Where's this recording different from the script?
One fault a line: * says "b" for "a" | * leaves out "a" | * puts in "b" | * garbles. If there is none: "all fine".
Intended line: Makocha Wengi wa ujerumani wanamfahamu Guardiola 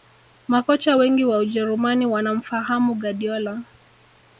all fine